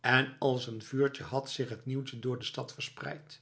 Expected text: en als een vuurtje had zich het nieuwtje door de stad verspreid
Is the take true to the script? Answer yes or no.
yes